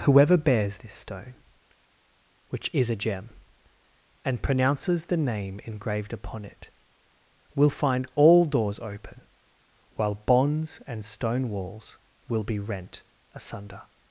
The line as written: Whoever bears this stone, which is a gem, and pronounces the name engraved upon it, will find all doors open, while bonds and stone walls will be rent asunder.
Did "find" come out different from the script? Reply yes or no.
no